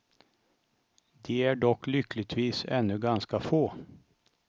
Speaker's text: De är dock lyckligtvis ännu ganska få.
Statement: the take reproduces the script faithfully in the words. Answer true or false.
true